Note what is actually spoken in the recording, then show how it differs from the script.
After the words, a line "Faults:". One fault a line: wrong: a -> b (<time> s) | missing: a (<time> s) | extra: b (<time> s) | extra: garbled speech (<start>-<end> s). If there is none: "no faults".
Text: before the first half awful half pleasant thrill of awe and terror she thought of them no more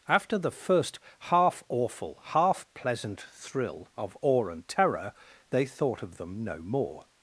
after the first half awful half pleasant thrill of awe and terror they thought of them no more
Faults:
wrong: before -> after (0.1 s)
wrong: she -> they (5.5 s)